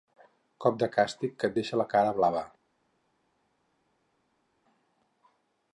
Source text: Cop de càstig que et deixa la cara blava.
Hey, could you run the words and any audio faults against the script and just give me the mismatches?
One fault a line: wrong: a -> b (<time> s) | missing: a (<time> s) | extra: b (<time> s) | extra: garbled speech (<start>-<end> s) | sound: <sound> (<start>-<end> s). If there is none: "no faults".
no faults